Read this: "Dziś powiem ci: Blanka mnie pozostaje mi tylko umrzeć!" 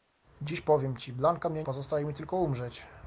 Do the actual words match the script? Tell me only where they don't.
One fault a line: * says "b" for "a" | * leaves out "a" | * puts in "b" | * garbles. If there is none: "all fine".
all fine